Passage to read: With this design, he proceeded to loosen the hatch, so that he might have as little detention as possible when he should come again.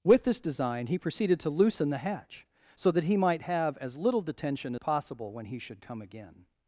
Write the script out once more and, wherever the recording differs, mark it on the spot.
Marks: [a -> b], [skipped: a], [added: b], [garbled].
With this design, he proceeded to loosen the hatch, so that he might have as little detention [skipped: as] possible when he should come again.